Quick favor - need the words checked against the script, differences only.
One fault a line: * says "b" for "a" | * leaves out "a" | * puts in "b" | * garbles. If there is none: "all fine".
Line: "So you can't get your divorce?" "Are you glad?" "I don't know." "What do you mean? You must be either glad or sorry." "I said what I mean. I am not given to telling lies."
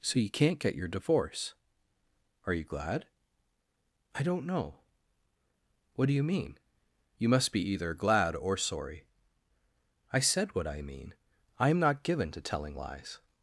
all fine